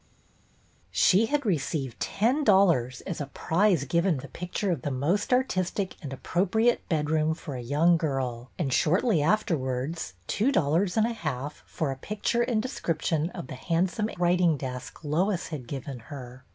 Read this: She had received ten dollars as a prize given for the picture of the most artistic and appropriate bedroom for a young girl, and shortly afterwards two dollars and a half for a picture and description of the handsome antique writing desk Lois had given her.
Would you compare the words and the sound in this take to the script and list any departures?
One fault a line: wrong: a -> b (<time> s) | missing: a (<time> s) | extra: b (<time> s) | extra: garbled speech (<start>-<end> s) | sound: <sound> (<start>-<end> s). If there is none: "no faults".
missing: for (4.2 s)
missing: antique (14.1 s)